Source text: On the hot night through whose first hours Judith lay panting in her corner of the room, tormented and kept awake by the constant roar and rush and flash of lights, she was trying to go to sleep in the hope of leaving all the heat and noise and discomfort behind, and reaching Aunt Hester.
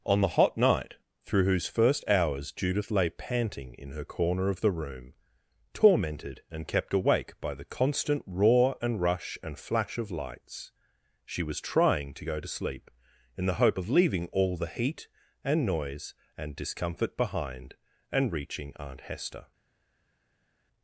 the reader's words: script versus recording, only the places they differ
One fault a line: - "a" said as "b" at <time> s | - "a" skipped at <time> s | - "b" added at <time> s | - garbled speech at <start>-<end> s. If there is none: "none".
none